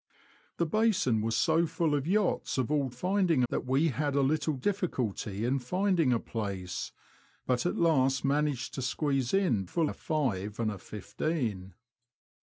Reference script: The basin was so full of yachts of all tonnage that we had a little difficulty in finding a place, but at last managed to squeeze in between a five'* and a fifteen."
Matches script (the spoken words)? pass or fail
fail